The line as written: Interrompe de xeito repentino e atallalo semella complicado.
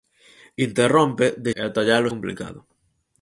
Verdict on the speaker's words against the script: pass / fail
fail